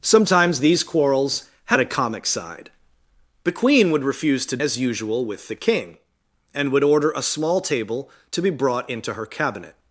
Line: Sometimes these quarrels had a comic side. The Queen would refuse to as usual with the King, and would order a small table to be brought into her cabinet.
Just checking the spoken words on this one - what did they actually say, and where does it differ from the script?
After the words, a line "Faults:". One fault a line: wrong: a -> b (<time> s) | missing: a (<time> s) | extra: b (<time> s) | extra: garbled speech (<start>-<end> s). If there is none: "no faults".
Sometimes these quarrels had a comic side. The Queen would refuse to as usual with the King, and would order a small table to be brought into her cabinet.
Faults:
no faults